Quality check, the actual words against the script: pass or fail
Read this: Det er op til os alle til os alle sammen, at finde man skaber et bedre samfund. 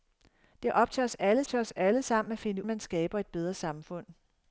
pass